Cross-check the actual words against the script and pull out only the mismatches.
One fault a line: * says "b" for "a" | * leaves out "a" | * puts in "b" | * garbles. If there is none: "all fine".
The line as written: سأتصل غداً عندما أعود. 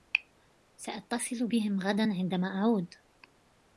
* puts in "بهم"